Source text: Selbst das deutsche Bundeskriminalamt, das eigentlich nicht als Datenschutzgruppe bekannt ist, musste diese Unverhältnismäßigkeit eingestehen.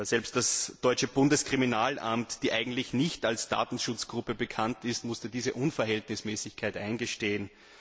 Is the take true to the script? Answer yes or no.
yes